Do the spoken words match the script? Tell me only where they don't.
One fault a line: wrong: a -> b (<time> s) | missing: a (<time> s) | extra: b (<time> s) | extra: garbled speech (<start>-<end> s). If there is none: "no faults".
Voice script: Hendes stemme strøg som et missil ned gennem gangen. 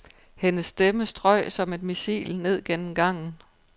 no faults